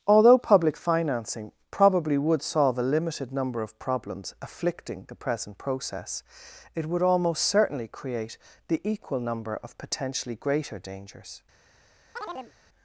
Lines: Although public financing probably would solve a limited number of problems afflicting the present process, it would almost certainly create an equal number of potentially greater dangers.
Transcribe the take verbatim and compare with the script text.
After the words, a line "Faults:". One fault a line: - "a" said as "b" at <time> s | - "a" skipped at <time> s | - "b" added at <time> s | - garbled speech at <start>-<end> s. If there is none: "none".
Although public financing probably would solve a limited number of problems afflicting the present process, it would almost certainly create the equal number of potentially greater dangers.
Faults:
- "an" said as "the" at 8.7 s